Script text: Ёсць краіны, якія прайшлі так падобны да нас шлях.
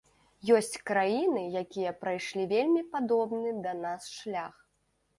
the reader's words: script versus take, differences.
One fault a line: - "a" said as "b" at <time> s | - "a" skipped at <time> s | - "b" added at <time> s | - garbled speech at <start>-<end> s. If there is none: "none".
- "так" said as "вельмі" at 2.5 s